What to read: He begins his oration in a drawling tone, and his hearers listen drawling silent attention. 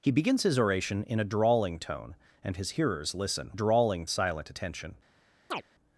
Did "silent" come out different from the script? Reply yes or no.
no